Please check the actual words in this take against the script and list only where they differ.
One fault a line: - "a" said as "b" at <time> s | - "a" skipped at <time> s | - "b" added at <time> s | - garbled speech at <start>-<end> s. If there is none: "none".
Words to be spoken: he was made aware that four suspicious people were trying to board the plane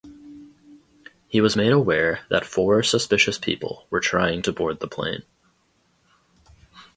none